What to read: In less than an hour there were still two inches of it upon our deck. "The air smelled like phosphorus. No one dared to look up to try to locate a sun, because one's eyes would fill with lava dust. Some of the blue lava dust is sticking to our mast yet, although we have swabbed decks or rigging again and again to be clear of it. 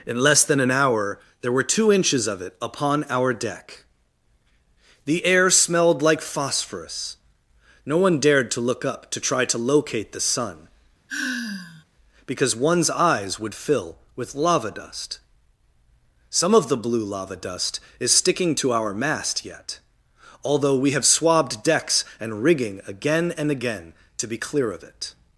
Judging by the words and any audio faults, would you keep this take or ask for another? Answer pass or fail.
fail